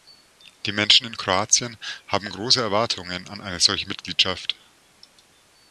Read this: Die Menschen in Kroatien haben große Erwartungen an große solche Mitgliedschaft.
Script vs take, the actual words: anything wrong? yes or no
yes